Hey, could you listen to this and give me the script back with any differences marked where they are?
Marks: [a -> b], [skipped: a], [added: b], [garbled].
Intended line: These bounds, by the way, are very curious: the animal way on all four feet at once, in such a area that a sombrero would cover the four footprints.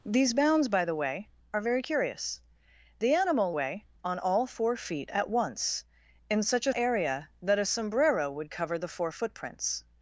These bounds, by the way, are very curious: the animal way on all four feet at once, in such a area that a sombrero would cover the four footprints.